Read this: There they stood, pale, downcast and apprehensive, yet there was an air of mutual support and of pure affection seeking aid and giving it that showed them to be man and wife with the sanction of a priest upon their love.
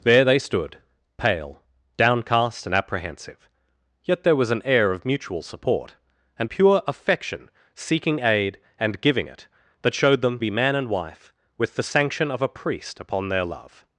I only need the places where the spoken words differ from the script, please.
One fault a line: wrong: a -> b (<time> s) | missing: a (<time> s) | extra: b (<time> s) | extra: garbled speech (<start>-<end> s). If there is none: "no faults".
missing: of (6.5 s)
missing: to (10.4 s)